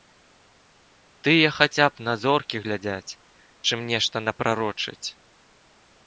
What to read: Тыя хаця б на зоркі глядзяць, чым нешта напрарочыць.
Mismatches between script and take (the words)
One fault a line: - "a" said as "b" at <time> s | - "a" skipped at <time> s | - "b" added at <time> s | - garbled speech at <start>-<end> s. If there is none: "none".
none